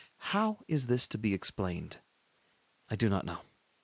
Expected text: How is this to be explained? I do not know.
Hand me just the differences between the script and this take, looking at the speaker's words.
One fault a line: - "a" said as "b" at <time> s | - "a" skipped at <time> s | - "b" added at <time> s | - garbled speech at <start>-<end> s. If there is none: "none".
none